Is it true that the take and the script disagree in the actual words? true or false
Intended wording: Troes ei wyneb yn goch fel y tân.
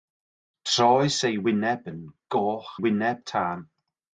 true